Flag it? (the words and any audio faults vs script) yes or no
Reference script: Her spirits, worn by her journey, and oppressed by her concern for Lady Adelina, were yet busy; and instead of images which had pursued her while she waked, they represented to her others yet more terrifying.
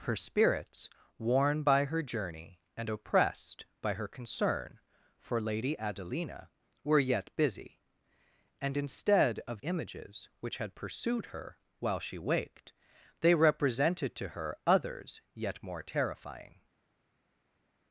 no